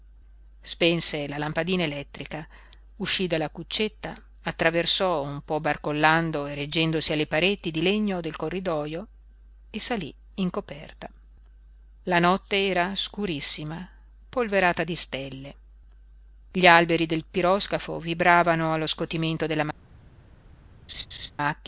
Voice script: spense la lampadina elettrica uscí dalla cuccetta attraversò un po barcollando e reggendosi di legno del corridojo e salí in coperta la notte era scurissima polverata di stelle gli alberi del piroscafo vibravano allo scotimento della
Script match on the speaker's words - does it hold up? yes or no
no